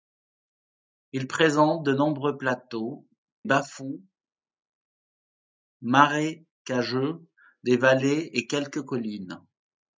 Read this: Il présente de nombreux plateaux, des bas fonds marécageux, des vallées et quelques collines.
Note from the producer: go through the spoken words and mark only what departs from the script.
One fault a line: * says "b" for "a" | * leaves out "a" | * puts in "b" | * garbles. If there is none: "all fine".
* leaves out "des"